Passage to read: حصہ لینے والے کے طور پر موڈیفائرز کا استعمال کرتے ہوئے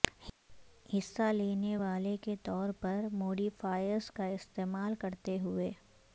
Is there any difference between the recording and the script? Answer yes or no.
no